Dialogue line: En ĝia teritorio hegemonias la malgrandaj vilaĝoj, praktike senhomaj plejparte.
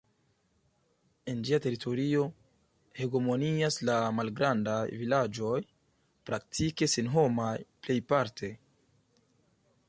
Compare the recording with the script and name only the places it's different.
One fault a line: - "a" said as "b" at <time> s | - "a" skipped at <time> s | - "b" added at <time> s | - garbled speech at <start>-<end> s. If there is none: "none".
none